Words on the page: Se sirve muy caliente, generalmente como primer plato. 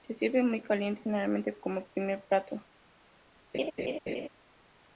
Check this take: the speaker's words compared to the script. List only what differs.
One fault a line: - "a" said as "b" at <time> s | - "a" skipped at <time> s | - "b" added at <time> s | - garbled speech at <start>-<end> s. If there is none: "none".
none